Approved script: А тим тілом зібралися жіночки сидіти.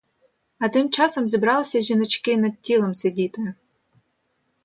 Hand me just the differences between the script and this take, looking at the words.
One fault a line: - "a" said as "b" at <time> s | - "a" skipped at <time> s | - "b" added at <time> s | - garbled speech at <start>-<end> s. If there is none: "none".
- "тілом" said as "часом" at 0.9 s
- "над тілом" added at 2.4 s